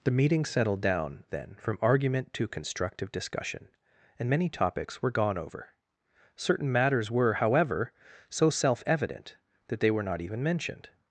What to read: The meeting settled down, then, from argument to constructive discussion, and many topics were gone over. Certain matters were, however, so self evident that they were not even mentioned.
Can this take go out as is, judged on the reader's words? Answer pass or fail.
pass